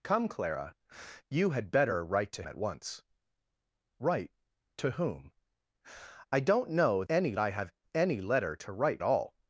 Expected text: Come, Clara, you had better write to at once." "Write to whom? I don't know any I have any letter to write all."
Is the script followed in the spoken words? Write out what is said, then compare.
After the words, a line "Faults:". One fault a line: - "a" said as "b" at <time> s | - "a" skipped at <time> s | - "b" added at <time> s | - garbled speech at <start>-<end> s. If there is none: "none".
Come, Clara, you had better write to at once." "Write to whom? I don't know any I have any letter to write all."
Faults:
none